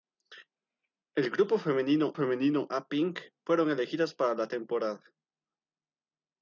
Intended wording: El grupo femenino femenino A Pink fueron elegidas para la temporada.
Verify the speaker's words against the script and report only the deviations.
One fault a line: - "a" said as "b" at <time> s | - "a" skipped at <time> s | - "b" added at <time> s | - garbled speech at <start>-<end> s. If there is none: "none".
none